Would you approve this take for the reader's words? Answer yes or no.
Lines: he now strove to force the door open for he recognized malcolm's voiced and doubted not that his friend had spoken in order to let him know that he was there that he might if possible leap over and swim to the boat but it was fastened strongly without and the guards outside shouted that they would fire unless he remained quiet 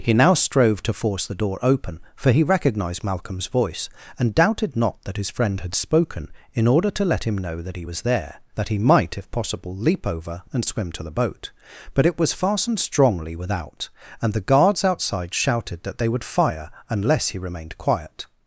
no